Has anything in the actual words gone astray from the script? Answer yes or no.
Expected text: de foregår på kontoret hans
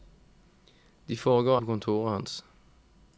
no